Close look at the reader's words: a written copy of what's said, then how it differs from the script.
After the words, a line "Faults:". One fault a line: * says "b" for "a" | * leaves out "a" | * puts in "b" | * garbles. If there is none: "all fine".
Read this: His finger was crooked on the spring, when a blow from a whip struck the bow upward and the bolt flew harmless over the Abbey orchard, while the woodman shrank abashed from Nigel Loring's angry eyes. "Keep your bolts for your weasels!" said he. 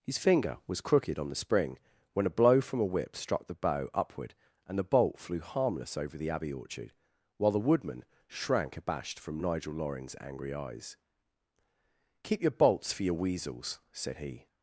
His finger was crooked on the spring, when a blow from a whip struck the bow upward and the bolt flew harmless over the Abbey orchard, while the woodman shrank abashed from Nigel Loring's angry eyes. "Keep your bolts for your weasels!" said he.
Faults:
all fine